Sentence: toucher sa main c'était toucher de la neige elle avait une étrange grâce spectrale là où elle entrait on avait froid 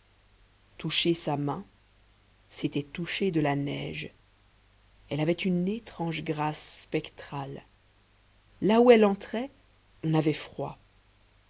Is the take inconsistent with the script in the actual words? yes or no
no